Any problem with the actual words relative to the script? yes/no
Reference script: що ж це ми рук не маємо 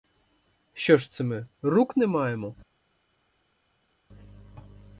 no